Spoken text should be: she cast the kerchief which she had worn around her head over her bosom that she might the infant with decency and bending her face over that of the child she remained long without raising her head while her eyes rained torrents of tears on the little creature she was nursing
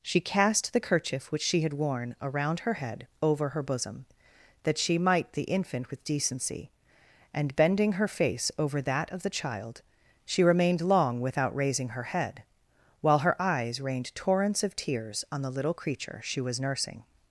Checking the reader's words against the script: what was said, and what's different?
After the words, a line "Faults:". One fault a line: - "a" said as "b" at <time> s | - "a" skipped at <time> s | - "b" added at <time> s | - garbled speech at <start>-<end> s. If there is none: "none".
she cast the kerchief which she had worn around her head over her bosom that she might the infant with decency and bending her face over that of the child she remained long without raising her head while her eyes rained torrents of tears on the little creature she was nursing
Faults:
none